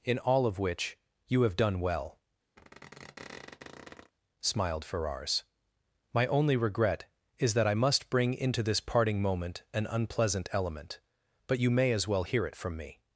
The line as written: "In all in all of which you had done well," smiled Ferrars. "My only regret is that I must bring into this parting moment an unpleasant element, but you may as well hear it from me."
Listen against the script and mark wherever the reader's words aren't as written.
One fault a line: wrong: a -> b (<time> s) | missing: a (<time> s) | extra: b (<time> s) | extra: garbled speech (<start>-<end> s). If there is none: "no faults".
missing: in all (0.5 s)
wrong: had -> have (1.4 s)